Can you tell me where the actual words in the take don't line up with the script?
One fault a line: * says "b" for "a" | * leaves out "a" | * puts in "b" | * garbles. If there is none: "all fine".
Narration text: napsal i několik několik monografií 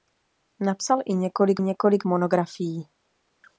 all fine